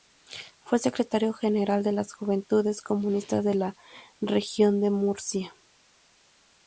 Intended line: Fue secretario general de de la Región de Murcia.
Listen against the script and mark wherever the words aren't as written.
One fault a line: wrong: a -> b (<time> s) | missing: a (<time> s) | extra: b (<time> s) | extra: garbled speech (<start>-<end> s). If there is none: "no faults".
extra: las Juventudes Comunistas (1.9 s)